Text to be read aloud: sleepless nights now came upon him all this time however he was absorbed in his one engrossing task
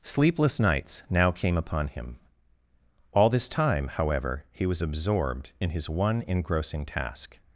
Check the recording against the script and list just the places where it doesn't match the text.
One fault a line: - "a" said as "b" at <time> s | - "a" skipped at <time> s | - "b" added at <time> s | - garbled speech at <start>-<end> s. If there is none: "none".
none